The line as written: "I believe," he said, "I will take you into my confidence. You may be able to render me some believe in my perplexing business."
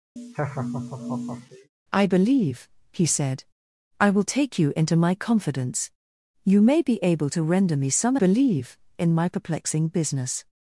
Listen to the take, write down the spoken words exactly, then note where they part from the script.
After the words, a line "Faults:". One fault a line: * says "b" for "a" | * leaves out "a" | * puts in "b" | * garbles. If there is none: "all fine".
"I believe," he said, "I will take you into my confidence. You may be able to render me some believe in my perplexing business."
Faults:
all fine